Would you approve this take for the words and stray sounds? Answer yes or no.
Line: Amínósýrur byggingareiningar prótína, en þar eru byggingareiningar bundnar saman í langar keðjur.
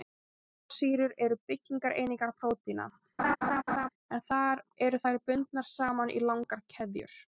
no